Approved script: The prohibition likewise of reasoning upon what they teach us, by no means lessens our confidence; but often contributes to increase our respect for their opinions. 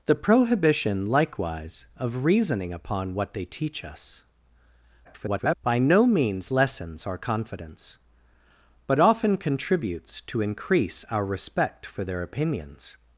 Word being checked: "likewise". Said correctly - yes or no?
yes